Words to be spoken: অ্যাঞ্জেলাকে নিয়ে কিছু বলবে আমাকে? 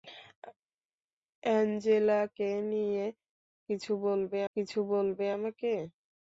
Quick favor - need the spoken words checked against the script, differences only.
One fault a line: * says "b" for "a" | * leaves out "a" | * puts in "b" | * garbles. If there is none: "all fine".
* puts in "কিছু বলবে"